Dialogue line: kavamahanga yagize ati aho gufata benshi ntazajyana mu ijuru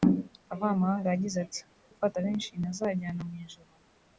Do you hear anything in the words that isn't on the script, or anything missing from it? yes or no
yes